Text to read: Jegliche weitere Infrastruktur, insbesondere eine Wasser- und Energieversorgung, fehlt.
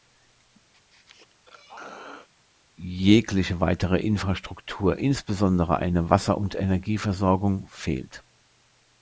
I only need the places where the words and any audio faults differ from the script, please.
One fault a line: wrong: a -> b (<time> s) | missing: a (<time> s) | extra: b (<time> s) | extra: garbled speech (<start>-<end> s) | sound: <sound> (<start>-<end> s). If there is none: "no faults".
sound: throat clearing (0.7-2.3 s)